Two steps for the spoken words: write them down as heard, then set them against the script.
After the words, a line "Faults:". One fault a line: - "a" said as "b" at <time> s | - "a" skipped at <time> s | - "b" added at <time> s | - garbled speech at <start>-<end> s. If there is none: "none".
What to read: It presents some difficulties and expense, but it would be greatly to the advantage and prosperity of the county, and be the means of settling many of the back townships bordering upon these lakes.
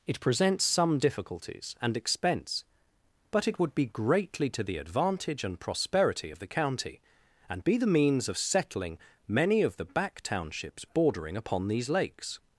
It presents some difficulties and expense, but it would be greatly to the advantage and prosperity of the county, and be the means of settling many of the back townships bordering upon these lakes.
Faults:
none